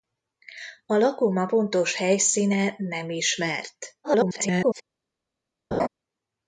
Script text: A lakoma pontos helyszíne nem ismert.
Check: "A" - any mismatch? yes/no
no